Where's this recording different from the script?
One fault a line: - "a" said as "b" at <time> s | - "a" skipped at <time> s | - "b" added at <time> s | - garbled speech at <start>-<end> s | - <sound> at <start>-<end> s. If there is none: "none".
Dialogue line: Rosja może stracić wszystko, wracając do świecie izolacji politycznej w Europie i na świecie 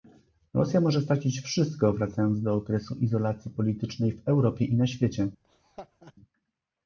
- "świecie" said as "okresu" at 2.5 s
- laugh at 5.4-6.1 s